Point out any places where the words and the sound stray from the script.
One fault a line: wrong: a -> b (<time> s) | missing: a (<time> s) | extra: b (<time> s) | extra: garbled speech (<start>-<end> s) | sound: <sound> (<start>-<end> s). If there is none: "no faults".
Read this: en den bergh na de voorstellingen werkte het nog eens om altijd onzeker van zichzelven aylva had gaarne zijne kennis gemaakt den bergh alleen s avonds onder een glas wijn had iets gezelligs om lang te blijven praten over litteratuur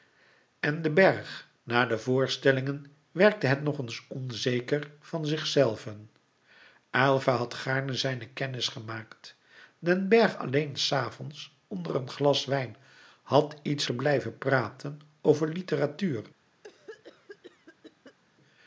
missing: om altijd (4.0 s)
missing: gezelligs om lang (13.9 s)
sound: cough (16.6-18.2 s)